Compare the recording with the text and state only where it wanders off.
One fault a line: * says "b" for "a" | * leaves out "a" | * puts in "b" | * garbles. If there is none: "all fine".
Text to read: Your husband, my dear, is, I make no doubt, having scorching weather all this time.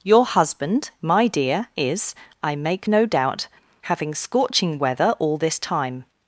all fine